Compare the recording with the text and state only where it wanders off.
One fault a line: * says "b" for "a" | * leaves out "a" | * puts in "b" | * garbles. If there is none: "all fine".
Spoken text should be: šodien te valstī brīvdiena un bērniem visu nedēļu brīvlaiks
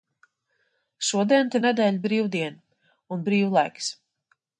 * says "nedēļu" for "valstī"
* leaves out "bērniem visu nedēļu"